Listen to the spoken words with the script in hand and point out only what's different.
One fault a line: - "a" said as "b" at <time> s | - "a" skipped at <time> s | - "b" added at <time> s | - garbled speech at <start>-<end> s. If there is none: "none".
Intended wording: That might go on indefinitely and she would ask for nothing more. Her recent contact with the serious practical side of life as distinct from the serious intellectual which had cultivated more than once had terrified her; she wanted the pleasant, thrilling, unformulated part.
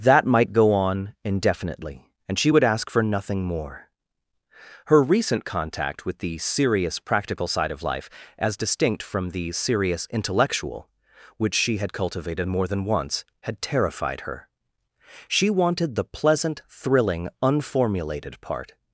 - "she" added at 11.6 s